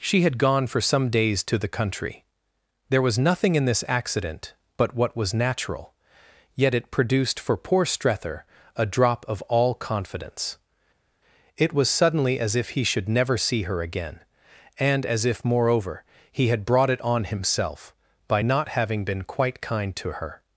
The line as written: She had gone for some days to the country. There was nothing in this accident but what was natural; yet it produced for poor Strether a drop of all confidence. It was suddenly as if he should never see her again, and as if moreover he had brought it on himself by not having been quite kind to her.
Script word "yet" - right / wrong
right